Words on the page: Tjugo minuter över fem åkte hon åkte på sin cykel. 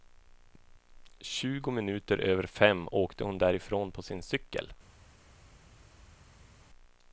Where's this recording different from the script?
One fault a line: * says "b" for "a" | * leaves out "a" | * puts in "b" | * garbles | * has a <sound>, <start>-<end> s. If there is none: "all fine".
* says "därifrån" for "åkte"